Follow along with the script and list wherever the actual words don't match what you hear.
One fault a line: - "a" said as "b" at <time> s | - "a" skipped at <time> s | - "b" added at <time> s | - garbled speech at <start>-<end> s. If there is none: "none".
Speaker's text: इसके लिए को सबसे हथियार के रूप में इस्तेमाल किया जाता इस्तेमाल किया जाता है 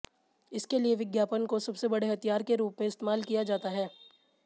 - "विज्ञापन" added at 0.9 s
- "बड़े" added at 1.9 s
- "इस्तेमाल किया जाता" skipped at 3.7 s